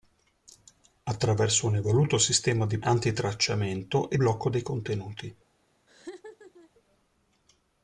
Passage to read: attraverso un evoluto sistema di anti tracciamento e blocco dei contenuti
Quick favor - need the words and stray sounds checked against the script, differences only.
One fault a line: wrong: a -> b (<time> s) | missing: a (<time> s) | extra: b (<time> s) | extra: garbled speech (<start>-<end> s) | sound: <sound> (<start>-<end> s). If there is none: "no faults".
sound: laugh (5.9-6.7 s)